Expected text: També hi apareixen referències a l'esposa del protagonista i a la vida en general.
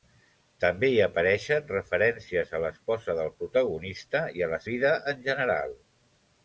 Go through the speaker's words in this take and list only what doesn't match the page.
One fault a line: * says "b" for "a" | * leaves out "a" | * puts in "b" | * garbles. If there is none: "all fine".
all fine